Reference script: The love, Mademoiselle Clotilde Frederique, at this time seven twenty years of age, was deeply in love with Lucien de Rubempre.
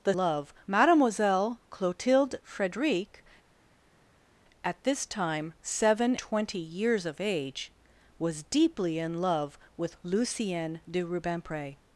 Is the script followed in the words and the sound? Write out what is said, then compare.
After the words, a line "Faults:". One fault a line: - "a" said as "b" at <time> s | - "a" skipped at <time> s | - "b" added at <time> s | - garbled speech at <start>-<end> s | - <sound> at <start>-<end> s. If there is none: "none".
The love, Mademoiselle Clotilde Frederique, at this time seven twenty years of age, was deeply in love with Lucien de Rubempre.
Faults:
none